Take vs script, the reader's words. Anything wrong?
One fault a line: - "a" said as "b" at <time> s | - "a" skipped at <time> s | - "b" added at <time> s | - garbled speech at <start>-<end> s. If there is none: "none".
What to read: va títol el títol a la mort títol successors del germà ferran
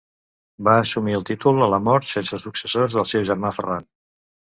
- "títol" said as "assumir" at 0.8 s
- "títol" said as "sense" at 2.1 s
- "seu" added at 3.1 s